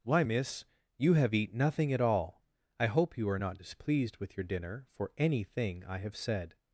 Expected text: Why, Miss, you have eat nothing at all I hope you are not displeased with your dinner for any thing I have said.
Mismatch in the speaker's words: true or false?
false